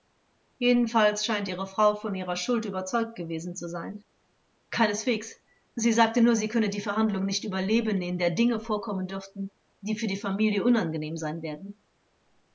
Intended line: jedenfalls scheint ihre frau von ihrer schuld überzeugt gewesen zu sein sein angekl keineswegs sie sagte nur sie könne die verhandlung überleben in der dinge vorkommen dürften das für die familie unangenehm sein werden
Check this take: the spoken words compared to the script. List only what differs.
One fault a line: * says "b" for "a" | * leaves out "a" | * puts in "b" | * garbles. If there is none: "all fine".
* leaves out "sein"
* puts in "nicht"
* says "die" for "das"